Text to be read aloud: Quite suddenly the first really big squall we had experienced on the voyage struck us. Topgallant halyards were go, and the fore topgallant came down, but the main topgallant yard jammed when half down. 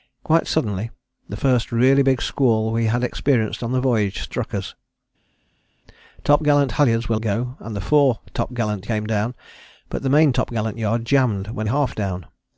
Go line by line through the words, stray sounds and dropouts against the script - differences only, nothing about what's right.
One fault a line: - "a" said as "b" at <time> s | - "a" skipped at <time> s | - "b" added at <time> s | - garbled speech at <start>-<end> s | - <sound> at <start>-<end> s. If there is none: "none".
none